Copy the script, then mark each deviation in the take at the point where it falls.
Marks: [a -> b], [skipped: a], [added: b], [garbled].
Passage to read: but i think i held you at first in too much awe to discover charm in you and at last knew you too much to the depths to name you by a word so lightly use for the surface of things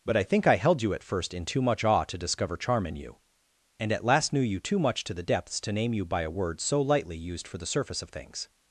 but i think i held you at first in too much awe to discover charm in you and at last knew you too much to the depths to name you by a word so lightly [use -> used] for the surface of things